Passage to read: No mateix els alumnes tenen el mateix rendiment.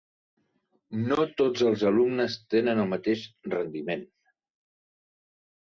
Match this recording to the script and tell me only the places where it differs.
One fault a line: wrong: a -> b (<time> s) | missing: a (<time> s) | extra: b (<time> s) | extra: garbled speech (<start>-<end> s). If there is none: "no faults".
wrong: mateix -> tots (1.4 s)